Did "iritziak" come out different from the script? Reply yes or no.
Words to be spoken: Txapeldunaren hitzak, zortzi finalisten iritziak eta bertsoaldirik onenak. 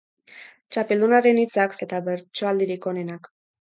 yes